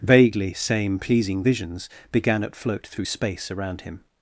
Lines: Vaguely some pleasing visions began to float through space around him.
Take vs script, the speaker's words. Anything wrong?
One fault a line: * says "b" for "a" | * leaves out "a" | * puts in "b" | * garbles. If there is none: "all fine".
* says "same" for "some"
* says "at" for "to"